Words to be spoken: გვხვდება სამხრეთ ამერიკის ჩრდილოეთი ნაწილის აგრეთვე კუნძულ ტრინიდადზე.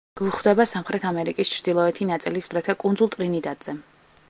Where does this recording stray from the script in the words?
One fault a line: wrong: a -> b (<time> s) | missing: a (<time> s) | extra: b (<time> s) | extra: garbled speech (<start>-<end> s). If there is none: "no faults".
no faults